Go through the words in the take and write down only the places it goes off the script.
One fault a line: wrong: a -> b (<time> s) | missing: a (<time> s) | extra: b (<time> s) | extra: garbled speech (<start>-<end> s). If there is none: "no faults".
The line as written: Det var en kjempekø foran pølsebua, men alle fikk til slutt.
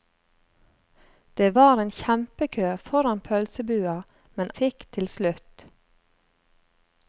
missing: alle (4.5 s)